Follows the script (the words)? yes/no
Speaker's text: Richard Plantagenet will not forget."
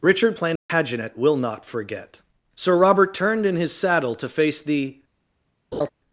no